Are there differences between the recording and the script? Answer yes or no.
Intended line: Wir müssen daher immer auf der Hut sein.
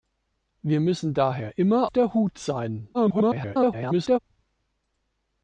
yes